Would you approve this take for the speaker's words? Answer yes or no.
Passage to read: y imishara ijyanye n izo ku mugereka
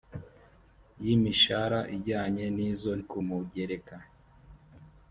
yes